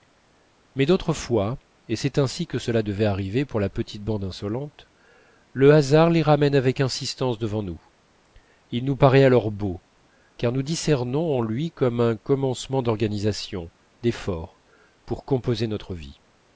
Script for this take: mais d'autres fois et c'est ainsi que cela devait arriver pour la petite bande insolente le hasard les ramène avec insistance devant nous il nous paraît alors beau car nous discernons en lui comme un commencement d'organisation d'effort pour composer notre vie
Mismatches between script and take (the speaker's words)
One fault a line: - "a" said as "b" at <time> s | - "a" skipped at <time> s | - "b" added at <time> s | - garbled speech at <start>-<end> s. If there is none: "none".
none